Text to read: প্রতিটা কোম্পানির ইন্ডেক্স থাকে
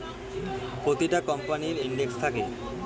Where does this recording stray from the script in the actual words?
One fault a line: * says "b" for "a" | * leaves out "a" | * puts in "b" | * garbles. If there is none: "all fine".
all fine